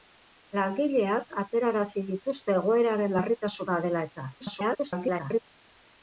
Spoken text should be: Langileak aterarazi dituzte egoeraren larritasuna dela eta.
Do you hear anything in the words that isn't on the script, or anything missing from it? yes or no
yes